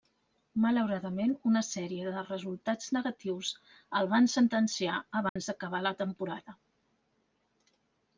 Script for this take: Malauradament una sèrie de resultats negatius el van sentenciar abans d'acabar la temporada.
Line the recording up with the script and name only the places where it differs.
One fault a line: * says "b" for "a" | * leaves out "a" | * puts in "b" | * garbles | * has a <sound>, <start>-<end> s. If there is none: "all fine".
* has a dropout, 5.3-5.4 s